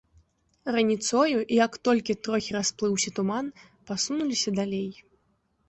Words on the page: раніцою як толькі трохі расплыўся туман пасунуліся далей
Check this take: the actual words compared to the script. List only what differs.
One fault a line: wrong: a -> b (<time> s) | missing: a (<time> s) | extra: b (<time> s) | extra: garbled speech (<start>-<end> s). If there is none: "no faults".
no faults